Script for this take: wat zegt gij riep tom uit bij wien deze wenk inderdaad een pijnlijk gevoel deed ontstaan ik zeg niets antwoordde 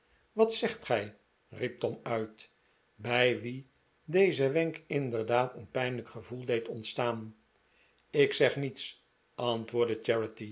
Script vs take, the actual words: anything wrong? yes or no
no